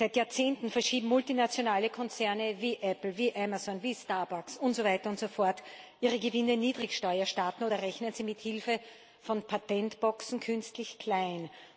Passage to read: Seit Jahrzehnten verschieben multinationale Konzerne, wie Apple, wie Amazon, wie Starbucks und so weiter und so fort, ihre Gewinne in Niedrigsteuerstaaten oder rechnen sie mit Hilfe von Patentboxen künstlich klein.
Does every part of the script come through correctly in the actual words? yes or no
yes